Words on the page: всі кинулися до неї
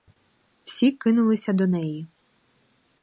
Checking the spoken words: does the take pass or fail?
pass